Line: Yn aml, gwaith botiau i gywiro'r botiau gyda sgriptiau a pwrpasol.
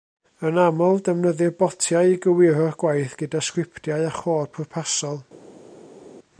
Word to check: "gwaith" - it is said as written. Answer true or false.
false